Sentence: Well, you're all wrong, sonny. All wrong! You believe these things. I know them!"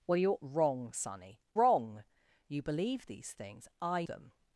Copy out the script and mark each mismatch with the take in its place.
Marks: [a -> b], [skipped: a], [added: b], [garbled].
Well, you're [skipped: all] wrong, sonny. [skipped: All] wrong! You believe these things. I [skipped: know] them!"